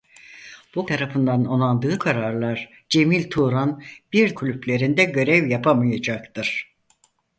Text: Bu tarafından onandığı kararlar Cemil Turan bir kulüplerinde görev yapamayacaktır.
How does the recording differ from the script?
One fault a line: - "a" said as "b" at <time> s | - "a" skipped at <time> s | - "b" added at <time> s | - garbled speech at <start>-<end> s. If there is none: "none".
none